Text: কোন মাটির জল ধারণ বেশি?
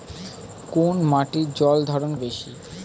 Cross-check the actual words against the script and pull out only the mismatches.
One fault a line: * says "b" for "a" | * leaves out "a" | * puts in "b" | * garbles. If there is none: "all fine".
all fine